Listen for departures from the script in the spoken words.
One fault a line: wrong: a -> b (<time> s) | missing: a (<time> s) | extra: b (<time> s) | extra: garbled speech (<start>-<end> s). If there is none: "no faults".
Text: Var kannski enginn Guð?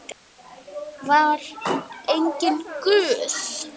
missing: kannski (1.4 s)